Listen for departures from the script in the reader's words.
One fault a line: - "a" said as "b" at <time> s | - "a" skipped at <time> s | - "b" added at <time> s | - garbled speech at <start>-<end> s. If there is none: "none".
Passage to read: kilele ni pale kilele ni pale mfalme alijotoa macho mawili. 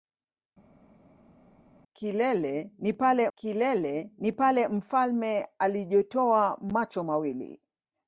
none